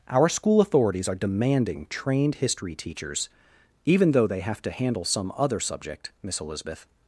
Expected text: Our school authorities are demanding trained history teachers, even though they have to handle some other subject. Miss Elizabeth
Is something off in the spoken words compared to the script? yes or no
no